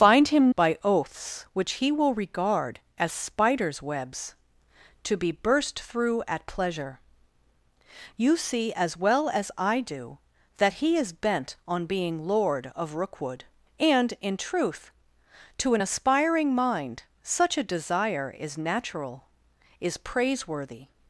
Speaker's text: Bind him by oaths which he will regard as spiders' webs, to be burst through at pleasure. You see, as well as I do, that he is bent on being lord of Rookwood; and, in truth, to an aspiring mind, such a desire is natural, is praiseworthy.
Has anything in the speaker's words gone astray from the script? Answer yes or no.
no